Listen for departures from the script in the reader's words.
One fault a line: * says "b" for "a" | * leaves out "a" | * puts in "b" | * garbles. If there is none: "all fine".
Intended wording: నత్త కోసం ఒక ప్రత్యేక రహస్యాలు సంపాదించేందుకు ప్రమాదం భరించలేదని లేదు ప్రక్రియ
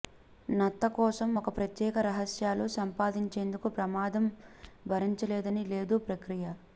all fine